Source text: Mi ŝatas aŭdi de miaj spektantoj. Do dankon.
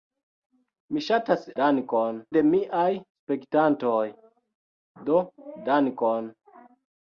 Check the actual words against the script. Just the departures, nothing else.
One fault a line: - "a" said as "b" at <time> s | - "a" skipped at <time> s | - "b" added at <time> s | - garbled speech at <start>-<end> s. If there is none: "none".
- "aŭdi" said as "dankon" at 1.6 s